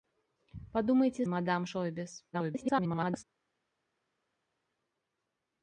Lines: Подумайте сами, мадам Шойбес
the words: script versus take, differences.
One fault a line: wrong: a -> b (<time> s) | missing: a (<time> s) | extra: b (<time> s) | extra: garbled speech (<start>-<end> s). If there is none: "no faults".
missing: сами (1.2 s)
extra: garbled speech (2.3-3.2 s)